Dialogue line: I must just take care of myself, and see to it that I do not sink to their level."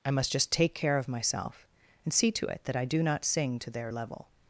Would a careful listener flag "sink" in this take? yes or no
yes